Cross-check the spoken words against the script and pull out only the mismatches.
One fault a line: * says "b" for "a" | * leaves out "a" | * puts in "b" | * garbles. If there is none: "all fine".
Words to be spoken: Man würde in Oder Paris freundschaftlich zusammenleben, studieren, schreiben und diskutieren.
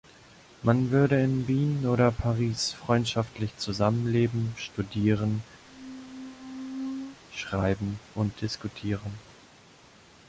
* puts in "Wien"